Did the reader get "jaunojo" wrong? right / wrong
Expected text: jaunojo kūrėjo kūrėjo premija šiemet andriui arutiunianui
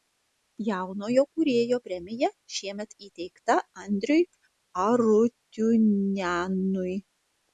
right